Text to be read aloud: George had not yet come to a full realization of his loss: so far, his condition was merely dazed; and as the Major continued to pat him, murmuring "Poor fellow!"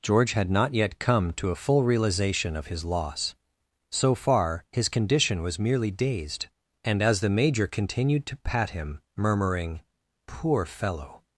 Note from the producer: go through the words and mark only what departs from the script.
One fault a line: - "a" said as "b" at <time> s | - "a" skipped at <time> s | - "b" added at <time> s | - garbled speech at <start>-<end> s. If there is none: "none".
none